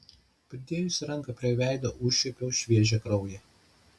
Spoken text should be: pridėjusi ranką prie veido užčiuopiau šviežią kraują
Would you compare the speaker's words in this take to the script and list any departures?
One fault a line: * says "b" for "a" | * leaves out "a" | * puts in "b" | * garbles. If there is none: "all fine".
all fine